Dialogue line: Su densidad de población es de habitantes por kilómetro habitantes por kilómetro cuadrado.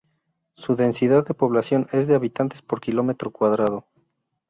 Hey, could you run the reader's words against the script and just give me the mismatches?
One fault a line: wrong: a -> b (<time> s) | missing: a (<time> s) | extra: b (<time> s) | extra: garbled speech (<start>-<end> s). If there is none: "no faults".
missing: habitantes por kilómetro (3.3 s)